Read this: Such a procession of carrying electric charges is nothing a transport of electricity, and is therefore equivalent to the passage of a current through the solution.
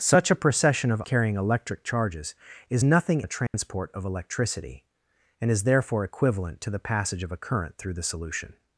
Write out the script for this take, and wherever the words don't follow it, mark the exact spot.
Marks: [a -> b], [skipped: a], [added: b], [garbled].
Such a procession of carrying electric charges is nothing a transport of electricity, and is therefore equivalent to the passage of a current through the solution.